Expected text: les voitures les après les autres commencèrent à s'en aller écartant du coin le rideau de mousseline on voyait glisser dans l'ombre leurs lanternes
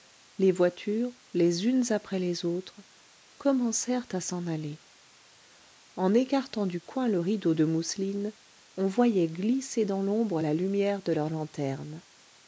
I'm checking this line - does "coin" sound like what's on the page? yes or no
yes